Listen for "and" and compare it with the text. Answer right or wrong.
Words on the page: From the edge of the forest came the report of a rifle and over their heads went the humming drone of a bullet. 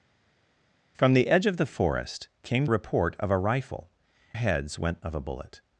wrong